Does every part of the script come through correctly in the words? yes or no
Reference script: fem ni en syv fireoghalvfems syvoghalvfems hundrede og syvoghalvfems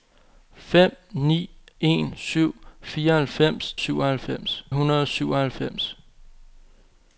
yes